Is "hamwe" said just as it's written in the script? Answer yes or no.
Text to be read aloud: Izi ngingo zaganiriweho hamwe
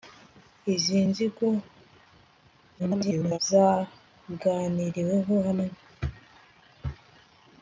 yes